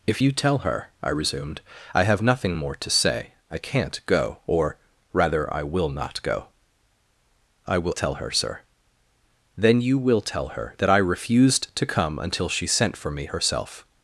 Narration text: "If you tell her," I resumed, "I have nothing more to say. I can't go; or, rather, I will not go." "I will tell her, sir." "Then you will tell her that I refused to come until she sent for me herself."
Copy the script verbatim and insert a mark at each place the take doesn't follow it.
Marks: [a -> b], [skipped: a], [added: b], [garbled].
"If you tell her," I resumed, "I have nothing more to say. I can't go; or, rather, I will not go." "I will tell her, sir." "Then you will tell her that I refused to come until she sent for me herself."